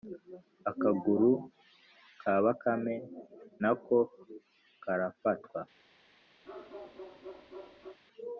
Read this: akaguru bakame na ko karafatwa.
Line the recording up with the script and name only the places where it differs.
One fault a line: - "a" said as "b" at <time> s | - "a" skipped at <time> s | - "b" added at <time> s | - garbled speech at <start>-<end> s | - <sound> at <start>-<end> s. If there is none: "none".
- "ka" added at 2.2 s
- bark at 6.4-8.0 s